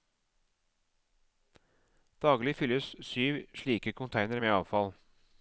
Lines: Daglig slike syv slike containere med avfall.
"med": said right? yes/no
yes